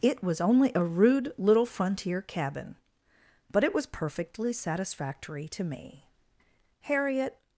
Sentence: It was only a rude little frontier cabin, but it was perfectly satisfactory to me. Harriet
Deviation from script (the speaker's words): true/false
false